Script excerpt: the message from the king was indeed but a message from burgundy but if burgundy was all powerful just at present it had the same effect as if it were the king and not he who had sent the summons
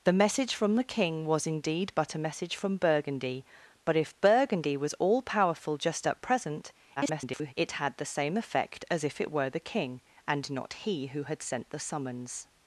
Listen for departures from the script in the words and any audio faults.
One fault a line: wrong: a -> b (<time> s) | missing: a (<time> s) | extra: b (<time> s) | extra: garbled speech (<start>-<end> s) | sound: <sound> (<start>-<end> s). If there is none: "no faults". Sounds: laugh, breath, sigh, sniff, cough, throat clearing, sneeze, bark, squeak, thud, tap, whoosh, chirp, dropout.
extra: garbled speech (7.0-7.5 s)